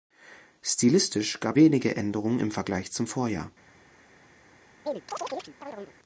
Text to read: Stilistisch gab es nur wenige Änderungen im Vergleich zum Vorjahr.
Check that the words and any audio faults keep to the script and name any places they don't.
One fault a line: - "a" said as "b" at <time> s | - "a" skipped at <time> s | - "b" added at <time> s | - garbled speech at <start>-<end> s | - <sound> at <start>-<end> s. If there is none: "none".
- "es nur" skipped at 1.6 s
- chirp at 4.8-5.9 s